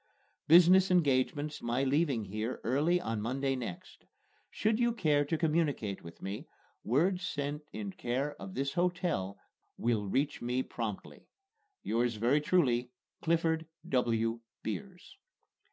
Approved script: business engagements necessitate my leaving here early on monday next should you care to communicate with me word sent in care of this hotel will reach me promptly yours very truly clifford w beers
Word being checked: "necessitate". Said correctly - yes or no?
no